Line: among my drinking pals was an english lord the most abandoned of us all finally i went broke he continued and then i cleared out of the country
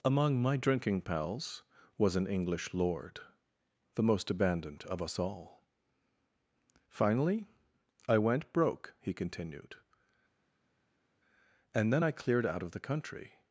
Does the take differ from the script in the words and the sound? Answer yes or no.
no